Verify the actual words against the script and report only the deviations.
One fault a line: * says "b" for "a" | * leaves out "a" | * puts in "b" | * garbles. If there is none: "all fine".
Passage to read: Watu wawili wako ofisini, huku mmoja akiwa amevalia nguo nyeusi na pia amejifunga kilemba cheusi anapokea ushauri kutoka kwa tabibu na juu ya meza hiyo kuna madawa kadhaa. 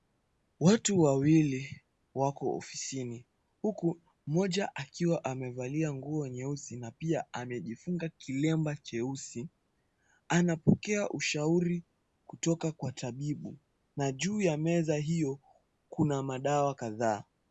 all fine